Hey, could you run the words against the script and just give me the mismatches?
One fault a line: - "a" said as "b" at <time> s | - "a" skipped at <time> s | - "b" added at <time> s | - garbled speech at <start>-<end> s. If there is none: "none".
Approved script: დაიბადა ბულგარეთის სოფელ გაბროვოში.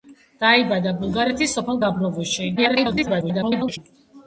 - garbled speech at 2.6-3.8 s